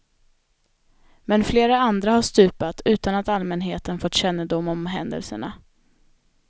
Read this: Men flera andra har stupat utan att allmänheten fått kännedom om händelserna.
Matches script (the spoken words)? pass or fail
pass